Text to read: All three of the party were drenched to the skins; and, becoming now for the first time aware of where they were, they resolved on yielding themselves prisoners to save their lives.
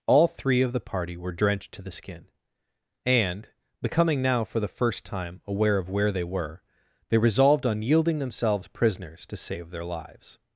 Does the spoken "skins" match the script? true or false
false